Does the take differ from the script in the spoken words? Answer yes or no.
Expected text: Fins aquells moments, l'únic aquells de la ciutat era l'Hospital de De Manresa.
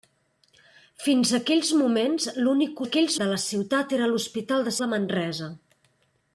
no